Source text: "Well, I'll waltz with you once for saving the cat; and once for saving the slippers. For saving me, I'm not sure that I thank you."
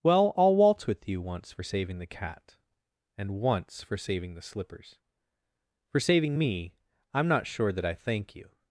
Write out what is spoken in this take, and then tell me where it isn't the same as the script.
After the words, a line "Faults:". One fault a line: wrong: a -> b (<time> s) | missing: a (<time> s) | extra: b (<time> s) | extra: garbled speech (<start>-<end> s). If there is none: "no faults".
"Well, I'll waltz with you once for saving the cat; and once for saving the slippers. For saving me, I'm not sure that I thank you."
Faults:
no faults